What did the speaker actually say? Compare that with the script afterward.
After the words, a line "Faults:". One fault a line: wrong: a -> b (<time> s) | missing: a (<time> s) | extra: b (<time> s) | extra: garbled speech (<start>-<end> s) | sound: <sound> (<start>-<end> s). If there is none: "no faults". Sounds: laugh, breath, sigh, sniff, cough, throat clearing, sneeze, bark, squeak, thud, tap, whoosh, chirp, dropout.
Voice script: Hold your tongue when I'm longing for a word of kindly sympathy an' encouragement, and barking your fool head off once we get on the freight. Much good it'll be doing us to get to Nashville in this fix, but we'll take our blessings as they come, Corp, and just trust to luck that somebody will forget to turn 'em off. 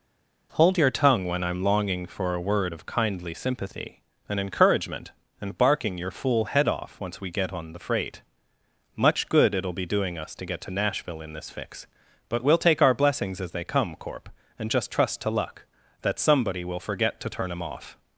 Hold your tongue when I'm longing for a word of kindly sympathy an' encouragement, and barking your fool head off once we get on the freight. Much good it'll be doing us to get to Nashville in this fix, but we'll take our blessings as they come, Corp, and just trust to luck that somebody will forget to turn 'em off.
Faults:
no faults